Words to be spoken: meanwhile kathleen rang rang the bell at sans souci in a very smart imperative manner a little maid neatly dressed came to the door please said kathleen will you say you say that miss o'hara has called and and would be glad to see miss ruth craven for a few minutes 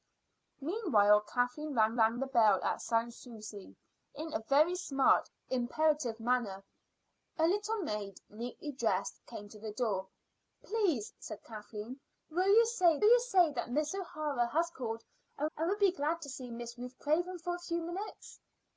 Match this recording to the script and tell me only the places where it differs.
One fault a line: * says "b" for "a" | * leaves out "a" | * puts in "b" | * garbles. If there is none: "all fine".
all fine